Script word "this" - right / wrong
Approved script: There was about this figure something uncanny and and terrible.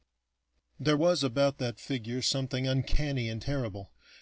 wrong